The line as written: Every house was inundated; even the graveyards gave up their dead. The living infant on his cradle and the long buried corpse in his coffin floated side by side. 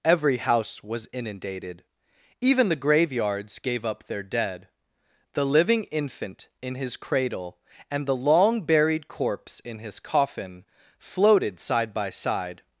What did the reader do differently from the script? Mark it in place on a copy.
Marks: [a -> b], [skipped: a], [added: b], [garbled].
Every house was inundated; even the graveyards gave up their dead. The living infant [on -> in] his cradle and the long buried corpse in his coffin floated side by side.